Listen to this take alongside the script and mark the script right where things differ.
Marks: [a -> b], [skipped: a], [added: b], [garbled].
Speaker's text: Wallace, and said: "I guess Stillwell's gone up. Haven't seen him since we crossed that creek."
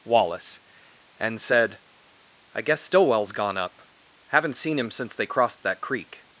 Wallace, and said: "I guess Stillwell's gone up. Haven't seen him since [we -> they] crossed that creek."